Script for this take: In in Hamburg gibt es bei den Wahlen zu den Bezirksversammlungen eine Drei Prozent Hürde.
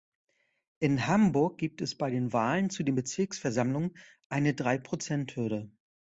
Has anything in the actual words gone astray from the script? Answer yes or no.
yes